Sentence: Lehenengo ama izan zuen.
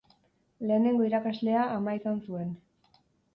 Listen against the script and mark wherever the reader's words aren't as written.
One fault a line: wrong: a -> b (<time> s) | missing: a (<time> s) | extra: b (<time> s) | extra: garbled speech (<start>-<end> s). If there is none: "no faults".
extra: irakaslea (1.1 s)